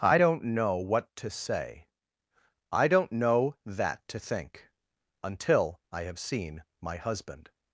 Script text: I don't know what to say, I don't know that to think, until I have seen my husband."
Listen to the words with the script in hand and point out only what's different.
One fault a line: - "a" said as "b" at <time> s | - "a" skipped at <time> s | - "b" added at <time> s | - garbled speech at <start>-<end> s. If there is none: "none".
none